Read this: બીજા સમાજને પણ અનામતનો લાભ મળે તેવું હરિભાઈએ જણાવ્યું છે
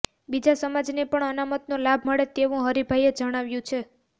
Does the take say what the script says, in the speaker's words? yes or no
yes